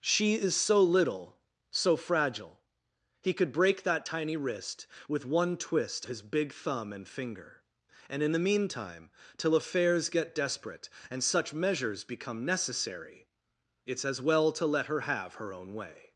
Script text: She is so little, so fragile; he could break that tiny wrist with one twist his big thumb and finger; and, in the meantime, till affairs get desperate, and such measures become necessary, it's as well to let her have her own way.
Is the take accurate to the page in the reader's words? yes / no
yes